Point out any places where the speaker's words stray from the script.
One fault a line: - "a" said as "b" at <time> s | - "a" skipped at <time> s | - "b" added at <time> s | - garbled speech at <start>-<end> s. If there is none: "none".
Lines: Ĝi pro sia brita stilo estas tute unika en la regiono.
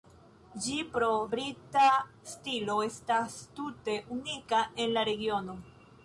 - "sia" skipped at 1.1 s